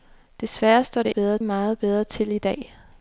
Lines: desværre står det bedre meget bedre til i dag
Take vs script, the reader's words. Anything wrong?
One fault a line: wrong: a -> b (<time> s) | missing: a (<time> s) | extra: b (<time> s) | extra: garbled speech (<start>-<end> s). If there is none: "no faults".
no faults